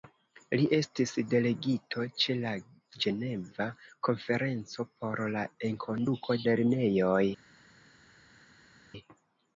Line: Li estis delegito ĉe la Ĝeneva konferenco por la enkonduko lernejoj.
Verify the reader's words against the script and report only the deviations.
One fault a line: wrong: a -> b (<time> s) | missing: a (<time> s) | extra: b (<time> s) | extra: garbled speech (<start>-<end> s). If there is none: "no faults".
no faults